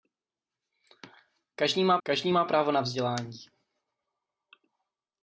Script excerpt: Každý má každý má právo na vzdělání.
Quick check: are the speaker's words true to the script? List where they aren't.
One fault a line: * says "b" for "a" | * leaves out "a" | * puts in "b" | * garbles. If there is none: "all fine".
all fine